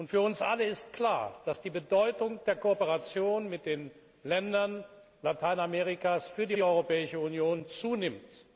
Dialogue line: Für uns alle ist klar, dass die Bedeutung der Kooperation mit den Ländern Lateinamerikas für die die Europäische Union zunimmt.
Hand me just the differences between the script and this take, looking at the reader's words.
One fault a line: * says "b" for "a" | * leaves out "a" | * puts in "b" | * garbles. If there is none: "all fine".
all fine